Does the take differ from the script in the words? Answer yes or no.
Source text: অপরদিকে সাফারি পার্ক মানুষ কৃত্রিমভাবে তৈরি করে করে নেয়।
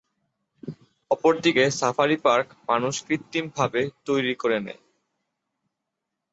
yes